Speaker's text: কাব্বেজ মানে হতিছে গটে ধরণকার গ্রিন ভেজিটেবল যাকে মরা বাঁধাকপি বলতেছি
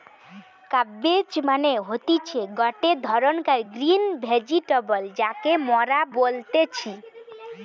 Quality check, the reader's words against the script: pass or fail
fail